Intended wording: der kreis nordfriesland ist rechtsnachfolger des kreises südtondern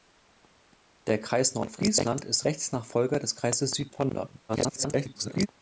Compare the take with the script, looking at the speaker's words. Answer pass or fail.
fail